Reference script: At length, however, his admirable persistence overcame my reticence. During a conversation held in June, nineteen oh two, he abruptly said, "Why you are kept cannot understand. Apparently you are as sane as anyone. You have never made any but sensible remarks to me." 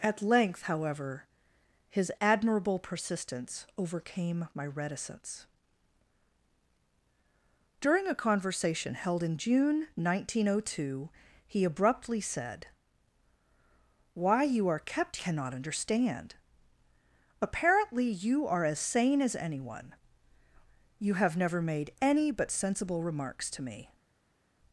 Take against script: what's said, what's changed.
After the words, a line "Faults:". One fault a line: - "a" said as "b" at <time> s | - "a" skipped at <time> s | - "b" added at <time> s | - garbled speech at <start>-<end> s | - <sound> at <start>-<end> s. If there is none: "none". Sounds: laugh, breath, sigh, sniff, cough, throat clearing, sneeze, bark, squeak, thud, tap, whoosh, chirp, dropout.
At length, however, his admirable persistence overcame my reticence. During a conversation held in June, nineteen oh two, he abruptly said, "Why you are kept cannot understand. Apparently you are as sane as anyone. You have never made any but sensible remarks to me."
Faults:
none